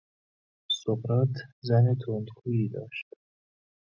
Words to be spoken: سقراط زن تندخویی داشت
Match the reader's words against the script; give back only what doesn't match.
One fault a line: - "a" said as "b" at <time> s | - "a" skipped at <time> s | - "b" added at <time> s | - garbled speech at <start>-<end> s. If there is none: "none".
none